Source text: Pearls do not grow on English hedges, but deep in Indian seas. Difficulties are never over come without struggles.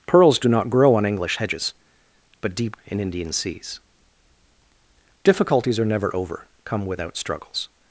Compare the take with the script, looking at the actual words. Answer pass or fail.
pass